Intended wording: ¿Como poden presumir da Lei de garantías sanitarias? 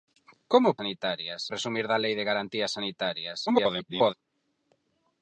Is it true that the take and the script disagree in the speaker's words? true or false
true